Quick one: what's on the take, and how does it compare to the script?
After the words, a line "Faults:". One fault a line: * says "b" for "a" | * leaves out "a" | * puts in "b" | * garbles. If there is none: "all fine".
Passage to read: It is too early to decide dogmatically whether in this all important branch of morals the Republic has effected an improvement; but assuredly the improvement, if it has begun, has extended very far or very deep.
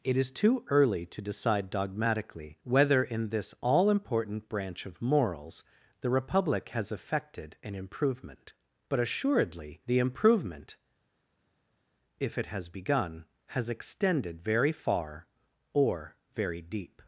It is too early to decide dogmatically whether in this all important branch of morals the Republic has effected an improvement; but assuredly the improvement, if it has begun, has extended very far or very deep.
Faults:
all fine